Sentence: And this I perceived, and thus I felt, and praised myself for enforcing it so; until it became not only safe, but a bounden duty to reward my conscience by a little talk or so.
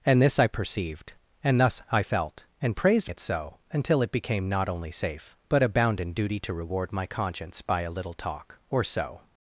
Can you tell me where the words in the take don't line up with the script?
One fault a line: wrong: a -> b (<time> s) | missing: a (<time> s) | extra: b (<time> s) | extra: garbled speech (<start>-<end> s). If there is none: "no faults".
missing: myself for enforcing (3.1 s)